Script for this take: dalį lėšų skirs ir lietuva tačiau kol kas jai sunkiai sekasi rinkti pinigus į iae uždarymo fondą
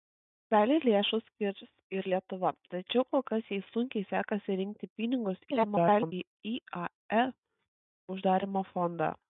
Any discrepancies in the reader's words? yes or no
yes